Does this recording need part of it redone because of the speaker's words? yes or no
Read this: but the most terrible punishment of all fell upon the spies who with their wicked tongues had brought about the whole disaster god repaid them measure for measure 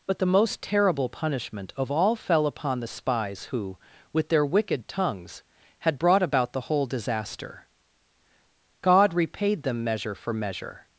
no